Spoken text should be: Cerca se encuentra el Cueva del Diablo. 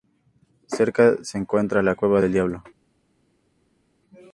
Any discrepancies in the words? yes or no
yes